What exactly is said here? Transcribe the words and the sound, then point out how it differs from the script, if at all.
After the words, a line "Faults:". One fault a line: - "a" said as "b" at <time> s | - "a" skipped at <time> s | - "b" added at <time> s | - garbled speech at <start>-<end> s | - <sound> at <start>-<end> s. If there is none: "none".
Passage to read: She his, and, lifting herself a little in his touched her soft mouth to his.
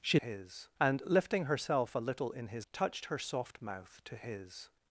She his, and, lifting herself a little in his touched her soft mouth to his.
Faults:
none